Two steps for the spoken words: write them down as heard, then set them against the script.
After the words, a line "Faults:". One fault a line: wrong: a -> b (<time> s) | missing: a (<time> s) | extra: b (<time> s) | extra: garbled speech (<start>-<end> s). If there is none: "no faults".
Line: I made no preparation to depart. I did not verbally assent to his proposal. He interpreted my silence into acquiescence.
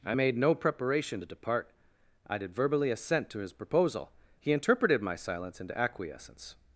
I made no preparation to depart. I did verbally assent to his proposal. He interpreted my silence into acquiescence.
Faults:
missing: not (2.5 s)